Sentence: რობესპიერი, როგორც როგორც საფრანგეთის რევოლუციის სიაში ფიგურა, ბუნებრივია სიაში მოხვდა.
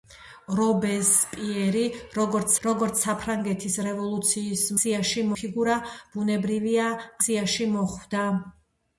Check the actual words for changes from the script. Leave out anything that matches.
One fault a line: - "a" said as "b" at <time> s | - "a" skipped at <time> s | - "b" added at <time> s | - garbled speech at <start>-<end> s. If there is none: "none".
none